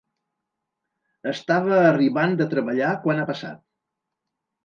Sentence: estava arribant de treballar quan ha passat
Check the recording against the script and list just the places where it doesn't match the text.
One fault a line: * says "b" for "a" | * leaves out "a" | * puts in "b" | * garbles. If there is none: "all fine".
all fine